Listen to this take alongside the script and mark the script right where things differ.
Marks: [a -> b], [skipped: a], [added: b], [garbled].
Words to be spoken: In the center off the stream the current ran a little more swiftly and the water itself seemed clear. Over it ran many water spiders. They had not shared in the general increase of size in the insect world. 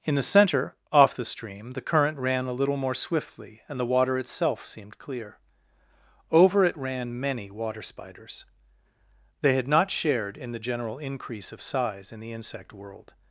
In the center off the stream the current ran a little more swiftly and the water itself seemed clear. Over it ran many water spiders. They had not shared in the general increase of size in the insect world.